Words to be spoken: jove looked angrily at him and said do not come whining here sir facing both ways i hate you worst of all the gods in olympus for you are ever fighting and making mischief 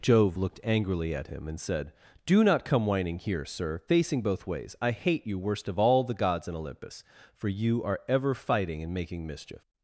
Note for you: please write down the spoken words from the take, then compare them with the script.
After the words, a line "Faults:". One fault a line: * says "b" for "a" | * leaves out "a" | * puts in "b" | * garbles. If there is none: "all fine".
jove looked angrily at him and said do not come whining here sir facing both ways i hate you worst of all the gods in olympus for you are ever fighting and making mischief
Faults:
all fine